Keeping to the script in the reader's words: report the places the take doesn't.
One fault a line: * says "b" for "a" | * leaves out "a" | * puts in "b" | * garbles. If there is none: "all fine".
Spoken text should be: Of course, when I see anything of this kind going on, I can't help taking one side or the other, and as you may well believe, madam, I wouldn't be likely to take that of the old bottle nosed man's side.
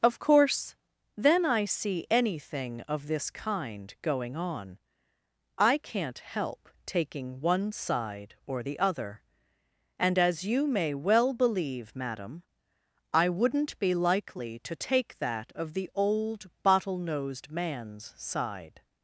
* says "then" for "when"